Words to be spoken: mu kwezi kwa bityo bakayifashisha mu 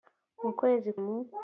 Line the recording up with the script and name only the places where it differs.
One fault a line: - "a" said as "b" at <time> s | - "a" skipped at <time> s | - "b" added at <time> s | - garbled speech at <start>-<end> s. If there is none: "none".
- "kwa bityo bakayifashisha" skipped at 0.9 s